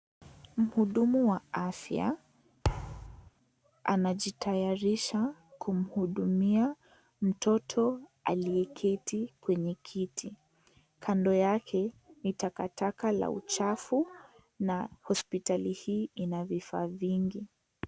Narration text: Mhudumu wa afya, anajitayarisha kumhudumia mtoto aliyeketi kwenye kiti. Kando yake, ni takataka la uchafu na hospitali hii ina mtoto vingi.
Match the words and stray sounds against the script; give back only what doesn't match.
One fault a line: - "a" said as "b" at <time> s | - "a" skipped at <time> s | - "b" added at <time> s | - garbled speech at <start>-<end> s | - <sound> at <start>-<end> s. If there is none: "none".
- thud at 2.6-3.3 s
- "mtoto" said as "vifaa" at 16.5 s